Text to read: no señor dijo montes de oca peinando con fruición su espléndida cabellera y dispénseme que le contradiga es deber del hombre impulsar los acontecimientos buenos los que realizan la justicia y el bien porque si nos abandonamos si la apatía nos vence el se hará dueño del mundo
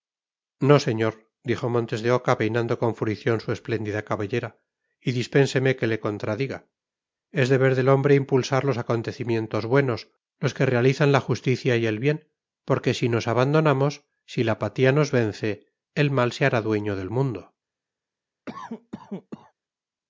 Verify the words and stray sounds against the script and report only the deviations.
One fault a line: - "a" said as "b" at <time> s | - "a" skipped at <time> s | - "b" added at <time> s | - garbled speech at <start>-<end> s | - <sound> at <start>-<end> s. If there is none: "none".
- "mal" added at 16.1 s
- cough at 18.5-19.5 s